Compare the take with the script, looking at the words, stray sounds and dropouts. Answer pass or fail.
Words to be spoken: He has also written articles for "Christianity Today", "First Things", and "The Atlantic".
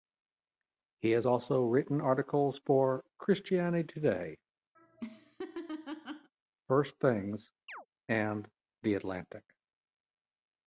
fail